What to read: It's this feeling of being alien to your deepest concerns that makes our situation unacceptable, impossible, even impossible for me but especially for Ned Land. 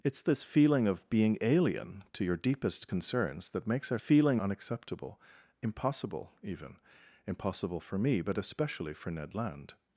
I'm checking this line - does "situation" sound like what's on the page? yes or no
no